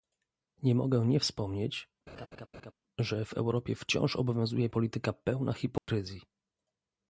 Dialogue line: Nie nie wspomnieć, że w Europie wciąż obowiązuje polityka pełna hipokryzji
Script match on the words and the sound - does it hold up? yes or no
no